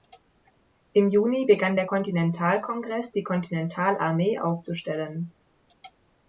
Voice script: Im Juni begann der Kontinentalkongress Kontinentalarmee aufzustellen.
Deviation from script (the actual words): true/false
true